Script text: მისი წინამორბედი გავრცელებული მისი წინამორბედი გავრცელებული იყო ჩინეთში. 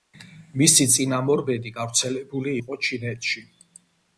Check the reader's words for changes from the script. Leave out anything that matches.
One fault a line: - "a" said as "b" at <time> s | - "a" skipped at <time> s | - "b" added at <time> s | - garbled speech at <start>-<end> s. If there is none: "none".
- "მისი წინამორბედი გავრცელებული" skipped at 2.6 s